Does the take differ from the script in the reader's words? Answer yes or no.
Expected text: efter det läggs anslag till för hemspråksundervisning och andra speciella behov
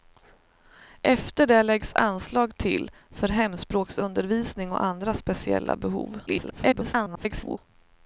yes